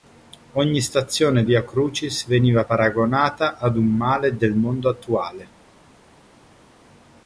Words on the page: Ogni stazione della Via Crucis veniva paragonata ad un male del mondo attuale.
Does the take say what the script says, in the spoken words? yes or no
no